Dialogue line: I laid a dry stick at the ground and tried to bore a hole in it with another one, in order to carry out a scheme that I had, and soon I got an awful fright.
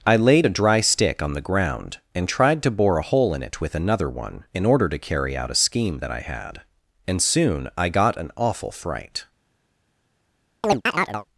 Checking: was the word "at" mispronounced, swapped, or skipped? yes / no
yes